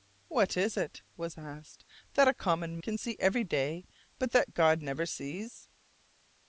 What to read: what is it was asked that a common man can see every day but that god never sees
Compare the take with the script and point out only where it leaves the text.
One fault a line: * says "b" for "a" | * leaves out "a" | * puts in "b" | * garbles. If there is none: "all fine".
* leaves out "man"